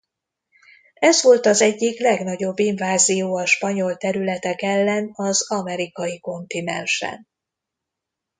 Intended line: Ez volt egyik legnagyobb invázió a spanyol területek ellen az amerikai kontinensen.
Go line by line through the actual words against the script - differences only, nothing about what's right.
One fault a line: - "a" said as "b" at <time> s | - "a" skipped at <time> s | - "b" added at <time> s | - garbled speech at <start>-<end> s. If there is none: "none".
- "az" added at 1.4 s